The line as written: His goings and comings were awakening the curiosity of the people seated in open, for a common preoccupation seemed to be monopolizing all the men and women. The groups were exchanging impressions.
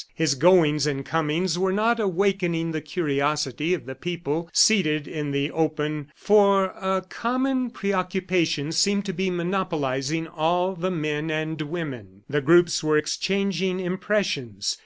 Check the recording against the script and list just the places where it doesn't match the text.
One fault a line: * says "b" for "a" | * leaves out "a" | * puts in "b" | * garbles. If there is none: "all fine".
* puts in "not"
* puts in "the"